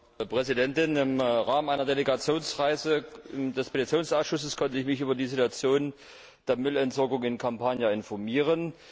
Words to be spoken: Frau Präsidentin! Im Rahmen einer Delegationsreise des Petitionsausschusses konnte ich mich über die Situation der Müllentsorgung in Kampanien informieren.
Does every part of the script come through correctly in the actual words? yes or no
yes